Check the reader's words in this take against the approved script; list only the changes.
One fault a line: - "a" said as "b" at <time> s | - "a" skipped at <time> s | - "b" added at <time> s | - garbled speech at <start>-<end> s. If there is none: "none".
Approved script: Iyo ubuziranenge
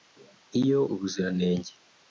none